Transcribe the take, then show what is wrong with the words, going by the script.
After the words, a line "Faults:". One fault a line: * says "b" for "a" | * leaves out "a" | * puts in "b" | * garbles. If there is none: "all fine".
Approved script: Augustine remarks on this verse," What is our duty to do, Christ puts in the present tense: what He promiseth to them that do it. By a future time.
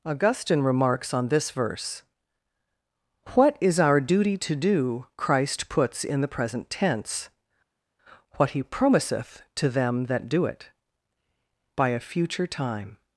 Augustine remarks on this verse," What is our duty to do, Christ puts in the present tense: what He promiseth to them that do it. By a future time.
Faults:
all fine